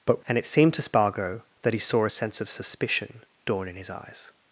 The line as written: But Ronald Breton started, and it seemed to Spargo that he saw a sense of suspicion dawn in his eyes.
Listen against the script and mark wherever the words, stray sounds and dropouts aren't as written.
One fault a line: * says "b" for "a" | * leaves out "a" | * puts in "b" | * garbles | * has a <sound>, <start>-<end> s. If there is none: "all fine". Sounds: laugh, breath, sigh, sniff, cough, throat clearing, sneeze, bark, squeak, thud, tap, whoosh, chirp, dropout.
* leaves out "Ronald Breton started"